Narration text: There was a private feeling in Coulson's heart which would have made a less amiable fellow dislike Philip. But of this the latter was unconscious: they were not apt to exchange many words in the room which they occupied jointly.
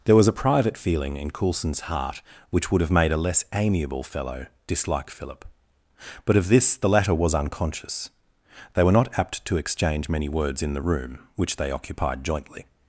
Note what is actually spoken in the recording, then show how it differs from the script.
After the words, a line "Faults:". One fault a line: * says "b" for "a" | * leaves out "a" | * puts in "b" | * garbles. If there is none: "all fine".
There was a private feeling in Coulson's heart which would have made a less amiable fellow dislike Philip. But of this the latter was unconscious: they were not apt to exchange many words in the room which they occupied jointly.
Faults:
all fine